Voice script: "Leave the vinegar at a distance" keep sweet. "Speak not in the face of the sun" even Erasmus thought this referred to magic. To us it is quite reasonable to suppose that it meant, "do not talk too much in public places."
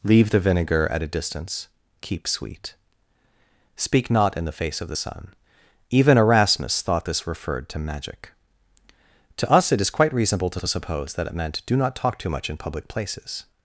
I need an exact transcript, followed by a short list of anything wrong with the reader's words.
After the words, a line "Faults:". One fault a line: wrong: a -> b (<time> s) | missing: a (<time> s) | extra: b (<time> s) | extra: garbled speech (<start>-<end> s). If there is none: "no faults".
"Leave the vinegar at a distance" keep sweet. "Speak not in the face of the sun" even Erasmus thought this referred to magic. To us it is quite reasonable to to suppose that it meant, "do not talk too much in public places."
Faults:
extra: to (10.6 s)